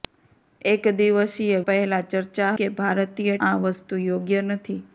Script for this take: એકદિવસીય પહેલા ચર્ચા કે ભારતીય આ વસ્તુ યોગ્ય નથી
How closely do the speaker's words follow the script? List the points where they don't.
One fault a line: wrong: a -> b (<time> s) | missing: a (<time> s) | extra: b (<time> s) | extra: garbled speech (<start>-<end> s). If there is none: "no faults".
no faults